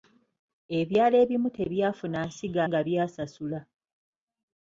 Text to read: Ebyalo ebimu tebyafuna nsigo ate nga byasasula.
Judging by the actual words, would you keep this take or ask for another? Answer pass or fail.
fail